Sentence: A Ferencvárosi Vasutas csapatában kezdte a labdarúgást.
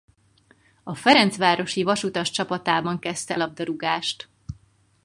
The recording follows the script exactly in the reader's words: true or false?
false